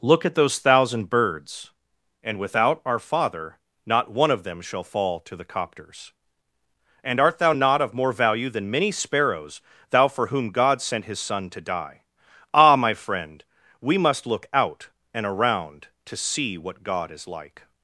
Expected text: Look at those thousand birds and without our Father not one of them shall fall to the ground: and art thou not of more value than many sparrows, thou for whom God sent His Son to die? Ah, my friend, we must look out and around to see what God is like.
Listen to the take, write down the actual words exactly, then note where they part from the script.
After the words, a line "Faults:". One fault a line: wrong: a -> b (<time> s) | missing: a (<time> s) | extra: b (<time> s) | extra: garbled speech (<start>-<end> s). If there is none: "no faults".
Look at those thousand birds and without our Father not one of them shall fall to the copters: and art thou not of more value than many sparrows, thou for whom God sent His Son to die? Ah, my friend, we must look out and around to see what God is like.
Faults:
wrong: ground -> copters (5.5 s)